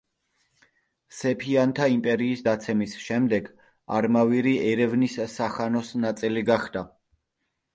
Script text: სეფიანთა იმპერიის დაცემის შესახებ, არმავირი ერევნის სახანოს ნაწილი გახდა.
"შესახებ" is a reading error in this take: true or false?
true